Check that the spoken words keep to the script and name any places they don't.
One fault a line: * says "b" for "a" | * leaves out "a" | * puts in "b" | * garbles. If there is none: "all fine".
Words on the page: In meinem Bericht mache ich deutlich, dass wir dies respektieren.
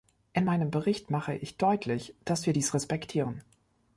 all fine